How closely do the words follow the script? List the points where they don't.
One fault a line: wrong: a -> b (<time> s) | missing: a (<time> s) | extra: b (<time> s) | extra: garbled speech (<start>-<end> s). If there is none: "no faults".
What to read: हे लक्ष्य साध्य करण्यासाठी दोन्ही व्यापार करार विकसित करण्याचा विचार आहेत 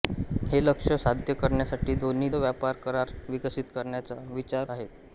no faults